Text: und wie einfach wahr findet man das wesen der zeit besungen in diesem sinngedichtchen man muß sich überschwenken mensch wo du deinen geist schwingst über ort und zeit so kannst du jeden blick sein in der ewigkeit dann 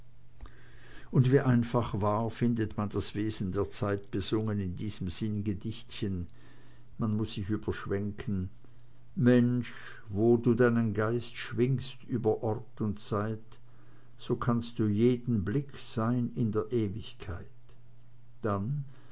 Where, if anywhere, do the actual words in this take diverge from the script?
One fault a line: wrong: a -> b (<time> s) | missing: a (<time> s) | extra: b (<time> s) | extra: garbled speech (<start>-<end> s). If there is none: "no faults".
no faults